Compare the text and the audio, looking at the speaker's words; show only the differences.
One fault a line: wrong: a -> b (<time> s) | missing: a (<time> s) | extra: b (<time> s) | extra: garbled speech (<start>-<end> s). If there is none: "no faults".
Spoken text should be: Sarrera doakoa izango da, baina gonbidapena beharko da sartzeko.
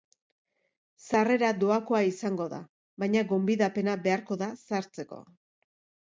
no faults